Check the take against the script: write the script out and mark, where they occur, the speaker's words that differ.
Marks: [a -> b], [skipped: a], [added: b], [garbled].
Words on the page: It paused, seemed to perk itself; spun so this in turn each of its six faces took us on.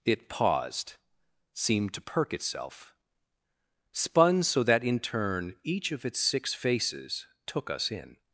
It paused, seemed to perk itself; spun so [this -> that] in turn each of its six faces took us [on. -> in]